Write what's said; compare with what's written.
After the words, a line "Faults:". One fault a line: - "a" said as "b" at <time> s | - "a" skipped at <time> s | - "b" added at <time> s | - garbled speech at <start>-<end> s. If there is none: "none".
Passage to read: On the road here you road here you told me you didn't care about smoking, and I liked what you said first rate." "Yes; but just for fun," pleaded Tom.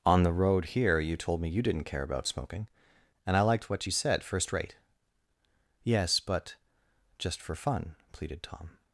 On the road here you told me you didn't care about smoking, and I liked what you said first rate." "Yes; but just for fun," pleaded Tom.
Faults:
- "road here you" skipped at 1.1 s